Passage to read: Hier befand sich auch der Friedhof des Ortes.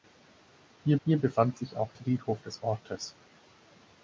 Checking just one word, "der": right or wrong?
wrong